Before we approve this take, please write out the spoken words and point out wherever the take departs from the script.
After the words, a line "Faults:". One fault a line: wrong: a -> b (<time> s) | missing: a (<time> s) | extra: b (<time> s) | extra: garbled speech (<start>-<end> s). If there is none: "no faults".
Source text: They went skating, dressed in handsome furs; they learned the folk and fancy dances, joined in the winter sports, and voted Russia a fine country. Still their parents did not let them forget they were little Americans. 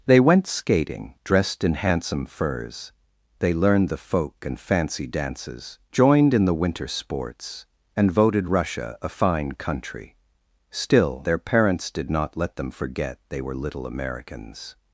They went skating, dressed in handsome furs; they learned the folk and fancy dances, joined in the winter sports, and voted Russia a fine country. Still their parents did not let them forget they were little Americans.
Faults:
no faults